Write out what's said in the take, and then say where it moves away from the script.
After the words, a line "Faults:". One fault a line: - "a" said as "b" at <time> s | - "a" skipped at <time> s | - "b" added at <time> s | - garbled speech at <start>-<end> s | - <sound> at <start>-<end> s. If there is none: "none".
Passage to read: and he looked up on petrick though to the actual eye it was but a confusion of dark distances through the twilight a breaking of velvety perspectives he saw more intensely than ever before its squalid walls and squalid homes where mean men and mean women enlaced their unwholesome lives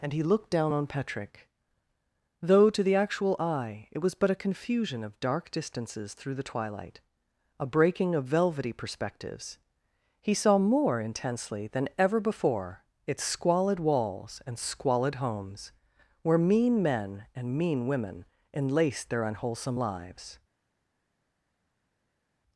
and he looked down on petrick though to the actual eye it was but a confusion of dark distances through the twilight a breaking of velvety perspectives he saw more intensely than ever before its squalid walls and squalid homes where mean men and mean women enlaced their unwholesome lives
Faults:
- "up" said as "down" at 0.5 s